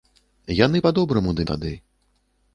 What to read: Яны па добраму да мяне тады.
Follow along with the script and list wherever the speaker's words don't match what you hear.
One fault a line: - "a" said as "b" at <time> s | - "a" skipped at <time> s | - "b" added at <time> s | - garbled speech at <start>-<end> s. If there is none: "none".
- "мяне" skipped at 1.5 s